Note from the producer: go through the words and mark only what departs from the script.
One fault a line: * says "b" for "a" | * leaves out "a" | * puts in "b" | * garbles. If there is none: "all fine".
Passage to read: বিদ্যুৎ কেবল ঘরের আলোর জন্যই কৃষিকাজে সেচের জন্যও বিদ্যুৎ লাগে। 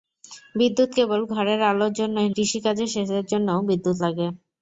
all fine